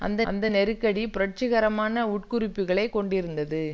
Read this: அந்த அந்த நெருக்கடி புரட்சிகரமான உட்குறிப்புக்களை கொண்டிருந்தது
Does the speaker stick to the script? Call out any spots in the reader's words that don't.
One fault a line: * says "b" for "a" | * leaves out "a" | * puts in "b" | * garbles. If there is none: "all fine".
all fine